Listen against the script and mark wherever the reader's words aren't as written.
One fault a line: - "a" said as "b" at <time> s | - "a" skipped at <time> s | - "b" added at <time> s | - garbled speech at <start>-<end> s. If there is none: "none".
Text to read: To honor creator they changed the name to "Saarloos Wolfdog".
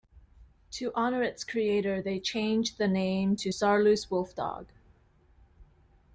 - "its" added at 1.2 s